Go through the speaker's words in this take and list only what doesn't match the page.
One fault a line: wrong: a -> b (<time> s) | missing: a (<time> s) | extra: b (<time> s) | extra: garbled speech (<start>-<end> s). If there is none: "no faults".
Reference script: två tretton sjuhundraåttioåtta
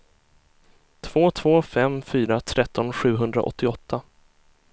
extra: två fem fyra (1.3 s)